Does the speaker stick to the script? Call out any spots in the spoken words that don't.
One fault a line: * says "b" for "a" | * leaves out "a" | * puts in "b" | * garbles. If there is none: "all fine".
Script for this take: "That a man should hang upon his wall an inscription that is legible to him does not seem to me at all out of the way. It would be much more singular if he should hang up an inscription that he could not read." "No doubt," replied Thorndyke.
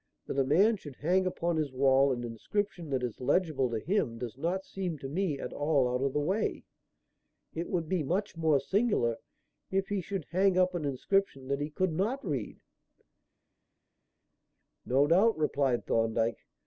all fine